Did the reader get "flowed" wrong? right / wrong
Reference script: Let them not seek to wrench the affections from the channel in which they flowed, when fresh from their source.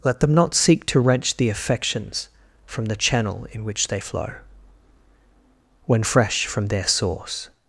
wrong